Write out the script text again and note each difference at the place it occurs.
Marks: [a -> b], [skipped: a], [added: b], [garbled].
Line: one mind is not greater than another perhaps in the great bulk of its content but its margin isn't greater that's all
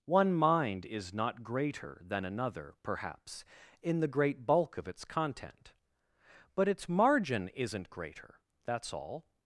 one mind is not greater than another perhaps in the great bulk of its content but its margin isn't greater that's all